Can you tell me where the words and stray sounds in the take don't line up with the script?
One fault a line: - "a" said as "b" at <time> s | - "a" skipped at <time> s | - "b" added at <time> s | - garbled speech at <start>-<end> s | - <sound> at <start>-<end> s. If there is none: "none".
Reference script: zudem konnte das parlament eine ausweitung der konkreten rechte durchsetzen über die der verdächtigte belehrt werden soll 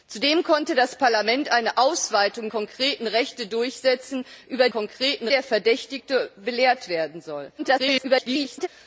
- "der" skipped at 2.5 s
- "die" said as "konkreten" at 4.7 s
- garbled speech at 7.6-8.7 s